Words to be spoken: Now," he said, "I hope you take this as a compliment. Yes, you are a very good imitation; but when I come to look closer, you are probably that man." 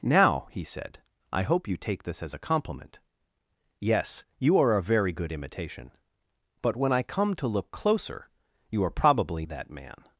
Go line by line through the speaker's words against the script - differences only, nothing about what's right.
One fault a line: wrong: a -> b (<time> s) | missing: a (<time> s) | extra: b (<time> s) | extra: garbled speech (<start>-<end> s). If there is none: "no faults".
no faults